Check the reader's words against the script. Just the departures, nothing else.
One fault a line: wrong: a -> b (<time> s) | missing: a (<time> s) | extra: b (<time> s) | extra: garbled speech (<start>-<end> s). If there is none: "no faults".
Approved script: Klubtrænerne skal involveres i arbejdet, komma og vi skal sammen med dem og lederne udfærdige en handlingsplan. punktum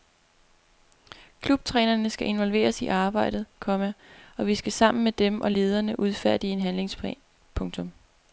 no faults